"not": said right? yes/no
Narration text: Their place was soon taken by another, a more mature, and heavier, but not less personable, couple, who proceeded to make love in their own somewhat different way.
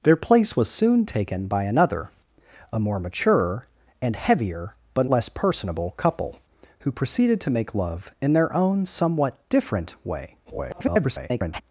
no